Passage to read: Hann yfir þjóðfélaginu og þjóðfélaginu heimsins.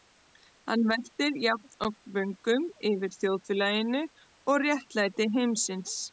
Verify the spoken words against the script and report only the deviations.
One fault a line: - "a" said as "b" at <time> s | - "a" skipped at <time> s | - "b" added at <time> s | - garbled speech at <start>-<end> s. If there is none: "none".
- "veltir jafnoft vöngum" added at 0.9 s
- "þjóðfélaginu" said as "réttlæti" at 4.7 s